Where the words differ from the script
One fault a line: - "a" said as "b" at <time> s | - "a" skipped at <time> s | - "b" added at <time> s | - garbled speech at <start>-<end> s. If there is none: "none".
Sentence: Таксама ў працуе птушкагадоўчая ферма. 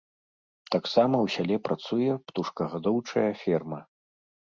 - "сяле" added at 1.3 s